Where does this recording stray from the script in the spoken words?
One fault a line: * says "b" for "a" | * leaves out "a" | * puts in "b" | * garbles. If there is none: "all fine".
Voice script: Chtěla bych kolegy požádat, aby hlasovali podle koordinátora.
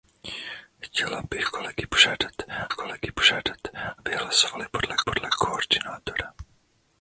* puts in "kolegy požádat"
* puts in "podle"